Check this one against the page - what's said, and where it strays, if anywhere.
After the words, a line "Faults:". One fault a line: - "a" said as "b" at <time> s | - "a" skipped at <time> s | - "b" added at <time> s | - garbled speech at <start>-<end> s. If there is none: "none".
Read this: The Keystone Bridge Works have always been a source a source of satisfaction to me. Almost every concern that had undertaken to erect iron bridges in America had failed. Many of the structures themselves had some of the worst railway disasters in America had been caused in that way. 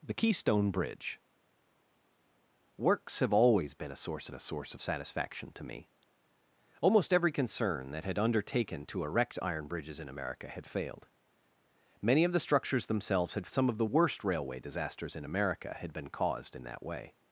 The Keystone Bridge Works have always been a source a source of satisfaction to me. Almost every concern that had undertaken to erect iron bridges in America had failed. Many of the structures themselves had some of the worst railway disasters in America had been caused in that way.
Faults:
none